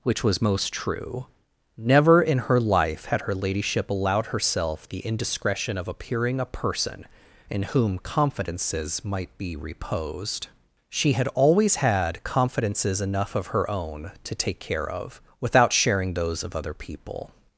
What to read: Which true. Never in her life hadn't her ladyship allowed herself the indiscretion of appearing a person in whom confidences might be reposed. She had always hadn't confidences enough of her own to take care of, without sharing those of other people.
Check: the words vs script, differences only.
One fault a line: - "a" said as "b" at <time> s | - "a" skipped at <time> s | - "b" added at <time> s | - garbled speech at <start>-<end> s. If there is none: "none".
- "was most" added at 0.2 s
- "hadn't" said as "had" at 3.0 s
- "hadn't" said as "had" at 11.8 s